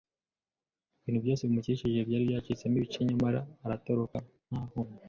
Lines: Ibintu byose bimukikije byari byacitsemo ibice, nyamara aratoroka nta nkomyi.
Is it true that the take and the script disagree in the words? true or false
false